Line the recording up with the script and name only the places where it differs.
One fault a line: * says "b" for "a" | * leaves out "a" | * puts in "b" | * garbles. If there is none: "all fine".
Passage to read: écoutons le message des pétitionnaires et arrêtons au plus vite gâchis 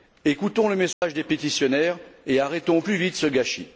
* puts in "ce"